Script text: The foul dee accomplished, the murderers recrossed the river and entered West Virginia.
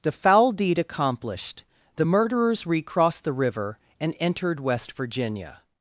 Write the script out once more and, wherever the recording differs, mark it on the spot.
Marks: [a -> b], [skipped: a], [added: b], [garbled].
The foul [dee -> deed] accomplished, the murderers recrossed the river and entered West Virginia.